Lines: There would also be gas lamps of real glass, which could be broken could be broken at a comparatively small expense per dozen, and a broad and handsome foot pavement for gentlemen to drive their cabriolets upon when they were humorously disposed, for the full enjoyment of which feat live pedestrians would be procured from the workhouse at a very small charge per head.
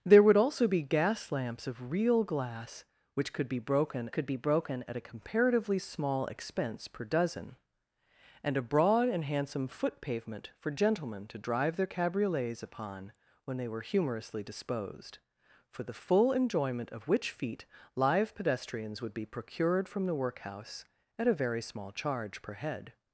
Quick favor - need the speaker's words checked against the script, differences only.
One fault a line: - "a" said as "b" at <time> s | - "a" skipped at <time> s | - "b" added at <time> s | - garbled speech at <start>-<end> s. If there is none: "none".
none